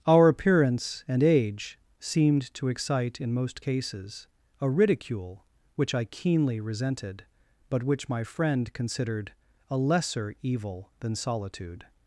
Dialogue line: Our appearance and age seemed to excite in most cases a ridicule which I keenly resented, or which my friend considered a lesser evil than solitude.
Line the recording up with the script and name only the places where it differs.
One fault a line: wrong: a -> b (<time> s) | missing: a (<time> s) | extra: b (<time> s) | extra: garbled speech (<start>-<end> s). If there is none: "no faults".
wrong: or -> but (7.7 s)